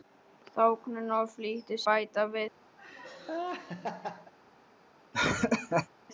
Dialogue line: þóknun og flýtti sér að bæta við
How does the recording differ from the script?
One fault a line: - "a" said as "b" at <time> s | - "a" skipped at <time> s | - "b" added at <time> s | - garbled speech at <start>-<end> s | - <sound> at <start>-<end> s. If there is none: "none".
- "sér að" skipped at 1.8 s
- laugh at 2.8-4.3 s
- laugh at 5.1-5.9 s